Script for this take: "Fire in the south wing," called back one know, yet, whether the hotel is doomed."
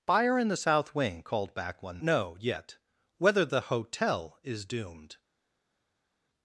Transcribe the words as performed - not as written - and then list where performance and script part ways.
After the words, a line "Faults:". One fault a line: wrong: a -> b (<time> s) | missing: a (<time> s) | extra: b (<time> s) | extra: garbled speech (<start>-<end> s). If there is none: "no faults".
"Fire in the south wing," called back one know, yet, whether the hotel is doomed."
Faults:
no faults